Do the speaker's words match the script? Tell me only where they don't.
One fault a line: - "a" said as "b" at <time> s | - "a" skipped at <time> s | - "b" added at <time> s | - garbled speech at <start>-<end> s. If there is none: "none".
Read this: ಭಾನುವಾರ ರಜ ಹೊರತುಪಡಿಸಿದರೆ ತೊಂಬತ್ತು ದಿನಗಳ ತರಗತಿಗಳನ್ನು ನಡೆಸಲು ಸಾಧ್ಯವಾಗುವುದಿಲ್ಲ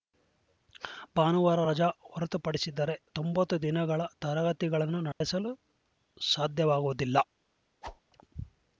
none